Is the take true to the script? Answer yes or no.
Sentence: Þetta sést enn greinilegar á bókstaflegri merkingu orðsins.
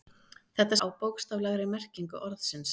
no